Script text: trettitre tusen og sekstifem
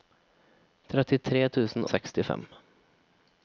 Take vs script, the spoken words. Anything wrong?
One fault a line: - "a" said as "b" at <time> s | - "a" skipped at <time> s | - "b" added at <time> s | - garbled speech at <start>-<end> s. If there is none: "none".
none